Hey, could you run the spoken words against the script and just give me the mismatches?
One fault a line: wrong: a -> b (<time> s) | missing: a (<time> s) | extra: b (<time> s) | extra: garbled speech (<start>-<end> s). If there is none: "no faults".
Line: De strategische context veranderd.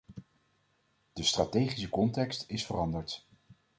extra: is (2.5 s)